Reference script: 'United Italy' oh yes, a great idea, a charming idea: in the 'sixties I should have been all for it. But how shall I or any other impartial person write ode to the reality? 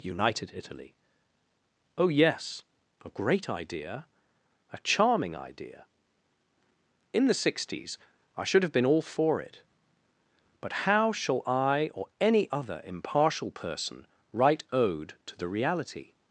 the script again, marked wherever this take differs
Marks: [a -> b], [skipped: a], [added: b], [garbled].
'United Italy' oh yes, a great idea, a charming idea: in the 'sixties I should have been all for it. But how shall I or any other impartial person write ode to the reality?